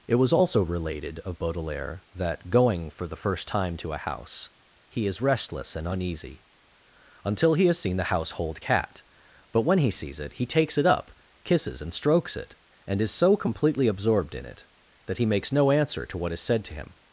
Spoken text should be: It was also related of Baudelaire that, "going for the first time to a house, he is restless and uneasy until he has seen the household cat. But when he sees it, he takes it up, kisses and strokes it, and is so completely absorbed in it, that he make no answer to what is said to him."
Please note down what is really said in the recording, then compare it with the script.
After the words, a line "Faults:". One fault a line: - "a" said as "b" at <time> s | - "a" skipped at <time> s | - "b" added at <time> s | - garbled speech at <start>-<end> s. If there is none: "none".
It was also related of Baudelaire that, "going for the first time to a house, he is restless and uneasy until he has seen the household cat. But when he sees it, he takes it up, kisses and strokes it, and is so completely absorbed in it, that he makes no answer to what is said to him."
Faults:
- "make" said as "makes" at 15.3 s